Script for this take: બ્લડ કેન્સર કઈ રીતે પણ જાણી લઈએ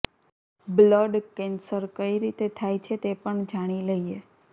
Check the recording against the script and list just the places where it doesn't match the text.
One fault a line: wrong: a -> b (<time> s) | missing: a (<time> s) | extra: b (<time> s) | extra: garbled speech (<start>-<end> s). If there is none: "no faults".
extra: થાય છે તે (2.6 s)